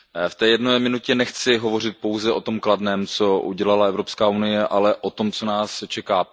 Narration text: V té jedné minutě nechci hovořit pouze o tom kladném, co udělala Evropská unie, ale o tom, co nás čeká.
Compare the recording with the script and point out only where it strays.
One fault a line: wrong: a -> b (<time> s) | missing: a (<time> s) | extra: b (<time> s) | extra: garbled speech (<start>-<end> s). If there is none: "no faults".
no faults